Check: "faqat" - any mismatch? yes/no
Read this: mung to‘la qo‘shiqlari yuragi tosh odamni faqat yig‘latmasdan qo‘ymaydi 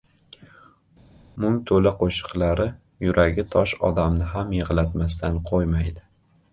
yes